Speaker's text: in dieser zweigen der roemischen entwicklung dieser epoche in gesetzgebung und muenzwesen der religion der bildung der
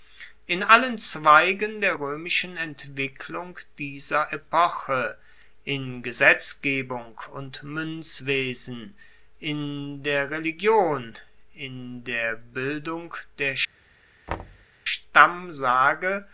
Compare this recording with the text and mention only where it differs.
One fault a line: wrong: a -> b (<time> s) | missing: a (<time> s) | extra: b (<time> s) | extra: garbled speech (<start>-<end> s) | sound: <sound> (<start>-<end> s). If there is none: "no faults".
wrong: dieser -> allen (0.6 s)
extra: in (9.4 s)
extra: in (11.5 s)
sound: thud (14.3-14.7 s)